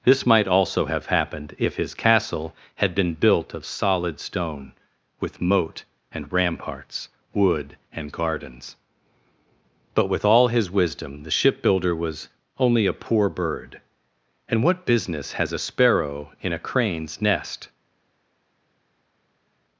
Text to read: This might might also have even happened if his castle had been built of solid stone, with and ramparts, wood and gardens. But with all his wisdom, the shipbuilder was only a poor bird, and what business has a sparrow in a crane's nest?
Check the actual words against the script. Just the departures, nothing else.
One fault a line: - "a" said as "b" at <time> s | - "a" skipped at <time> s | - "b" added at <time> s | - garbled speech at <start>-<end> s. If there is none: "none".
- "might" skipped at 0.5 s
- "even" skipped at 1.1 s
- "moat" added at 5.4 s